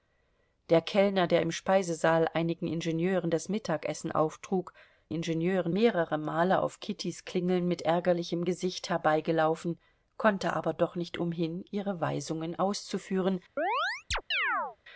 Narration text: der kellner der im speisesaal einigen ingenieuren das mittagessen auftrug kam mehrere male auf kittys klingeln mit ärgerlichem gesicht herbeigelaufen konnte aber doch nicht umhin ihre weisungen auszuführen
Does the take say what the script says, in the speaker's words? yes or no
no